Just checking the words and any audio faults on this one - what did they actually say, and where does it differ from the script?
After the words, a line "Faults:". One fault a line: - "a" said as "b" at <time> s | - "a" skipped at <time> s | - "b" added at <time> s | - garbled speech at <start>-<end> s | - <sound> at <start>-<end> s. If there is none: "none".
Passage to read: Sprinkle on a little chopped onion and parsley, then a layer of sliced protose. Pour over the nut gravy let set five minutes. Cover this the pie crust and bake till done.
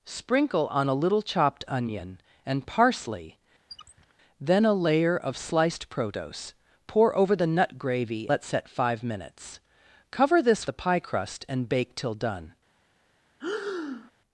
Sprinkle on a little chopped onion and parsley, then a layer of sliced protose. Pour over the nut gravy let set five minutes. Cover this the pie crust and bake till done.
Faults:
- squeak at 3.7-4.1 s
- breath at 13.4-14.1 s